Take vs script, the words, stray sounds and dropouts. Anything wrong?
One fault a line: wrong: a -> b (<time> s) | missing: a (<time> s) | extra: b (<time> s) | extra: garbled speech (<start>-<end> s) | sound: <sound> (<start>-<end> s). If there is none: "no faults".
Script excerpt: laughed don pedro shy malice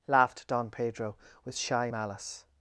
extra: with (1.4 s)